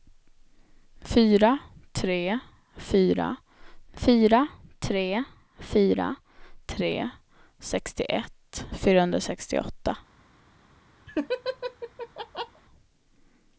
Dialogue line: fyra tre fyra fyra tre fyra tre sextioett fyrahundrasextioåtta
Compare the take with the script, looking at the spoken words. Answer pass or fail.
pass